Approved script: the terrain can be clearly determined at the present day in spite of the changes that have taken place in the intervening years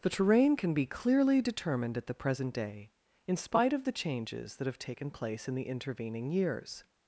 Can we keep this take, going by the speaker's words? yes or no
yes